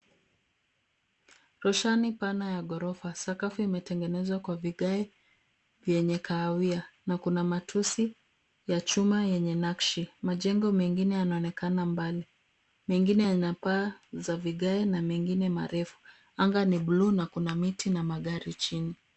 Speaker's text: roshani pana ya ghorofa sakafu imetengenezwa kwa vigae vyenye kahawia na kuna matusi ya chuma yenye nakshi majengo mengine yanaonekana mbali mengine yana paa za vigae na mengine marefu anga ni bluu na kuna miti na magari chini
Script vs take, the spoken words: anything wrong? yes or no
no